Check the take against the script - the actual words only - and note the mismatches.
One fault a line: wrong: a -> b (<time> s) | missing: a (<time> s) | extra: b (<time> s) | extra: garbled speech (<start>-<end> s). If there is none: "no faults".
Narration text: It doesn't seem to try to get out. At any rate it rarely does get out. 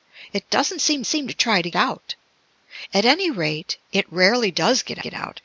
extra: seem (1.1 s)
missing: get (1.7 s)
extra: get (5.0 s)